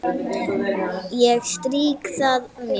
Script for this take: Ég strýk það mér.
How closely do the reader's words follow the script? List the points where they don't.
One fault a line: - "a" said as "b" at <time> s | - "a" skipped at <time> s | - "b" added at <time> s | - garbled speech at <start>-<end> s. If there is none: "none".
none